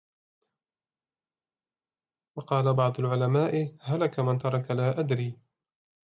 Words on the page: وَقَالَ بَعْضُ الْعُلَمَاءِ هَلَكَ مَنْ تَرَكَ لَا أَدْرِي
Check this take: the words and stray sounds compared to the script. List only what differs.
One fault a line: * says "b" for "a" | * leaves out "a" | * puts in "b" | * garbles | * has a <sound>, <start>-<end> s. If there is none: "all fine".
all fine